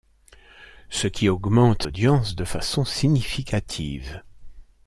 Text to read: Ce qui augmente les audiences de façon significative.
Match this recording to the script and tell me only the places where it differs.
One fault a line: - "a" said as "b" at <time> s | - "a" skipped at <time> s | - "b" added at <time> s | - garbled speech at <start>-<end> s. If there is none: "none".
- "les" skipped at 1.9 s